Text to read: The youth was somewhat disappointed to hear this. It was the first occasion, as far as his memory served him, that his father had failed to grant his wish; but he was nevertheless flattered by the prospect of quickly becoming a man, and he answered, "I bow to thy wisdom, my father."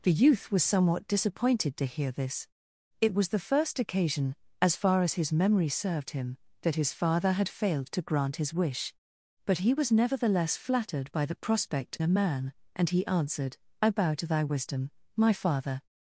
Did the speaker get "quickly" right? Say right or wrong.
wrong